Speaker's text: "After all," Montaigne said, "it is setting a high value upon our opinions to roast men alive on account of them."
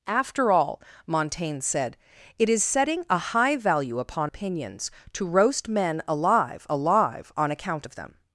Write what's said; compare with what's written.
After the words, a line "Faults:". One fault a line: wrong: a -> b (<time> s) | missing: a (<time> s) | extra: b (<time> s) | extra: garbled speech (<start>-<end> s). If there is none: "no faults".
"After all," Montaigne said, "it is setting a high value upon opinions to roast men alive alive on account of them."
Faults:
missing: our (4.3 s)
extra: alive (6.7 s)